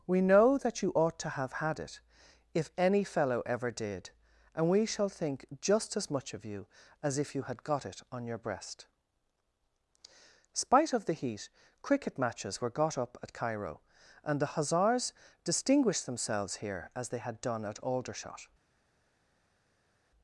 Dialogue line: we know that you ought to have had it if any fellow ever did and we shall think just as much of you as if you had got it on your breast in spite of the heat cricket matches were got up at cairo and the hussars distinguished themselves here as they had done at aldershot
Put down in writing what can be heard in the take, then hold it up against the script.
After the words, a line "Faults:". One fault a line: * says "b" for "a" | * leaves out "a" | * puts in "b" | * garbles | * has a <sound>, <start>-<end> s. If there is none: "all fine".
we know that you ought to have had it if any fellow ever did and we shall think just as much of you as if you had got it on your breast spite of the heat cricket matches were got up at cairo and the hussars distinguished themselves here as they had done at aldershot
Faults:
* leaves out "in"